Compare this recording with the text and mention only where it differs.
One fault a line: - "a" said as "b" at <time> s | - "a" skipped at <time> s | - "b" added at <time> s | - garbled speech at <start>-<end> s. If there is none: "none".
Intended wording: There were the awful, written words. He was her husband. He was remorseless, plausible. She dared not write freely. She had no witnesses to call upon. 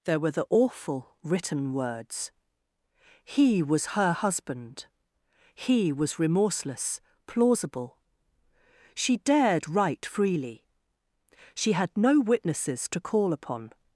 - "not" skipped at 9.7 s